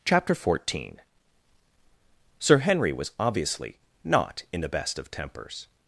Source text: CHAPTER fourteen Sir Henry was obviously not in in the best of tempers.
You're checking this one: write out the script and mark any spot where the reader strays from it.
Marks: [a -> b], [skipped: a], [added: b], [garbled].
CHAPTER fourteen Sir Henry was obviously not in [skipped: in] the best of tempers.